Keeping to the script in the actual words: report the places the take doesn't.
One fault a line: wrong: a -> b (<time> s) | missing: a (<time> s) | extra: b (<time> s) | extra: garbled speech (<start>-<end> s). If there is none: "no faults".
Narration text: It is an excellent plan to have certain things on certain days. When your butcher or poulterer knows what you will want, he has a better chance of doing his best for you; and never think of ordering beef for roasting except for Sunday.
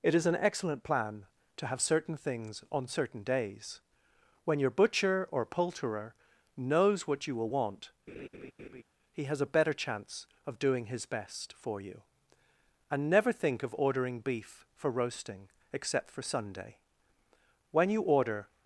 extra: When you order (17.7 s)